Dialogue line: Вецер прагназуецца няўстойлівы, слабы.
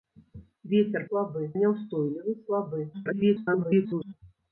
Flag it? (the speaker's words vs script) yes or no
yes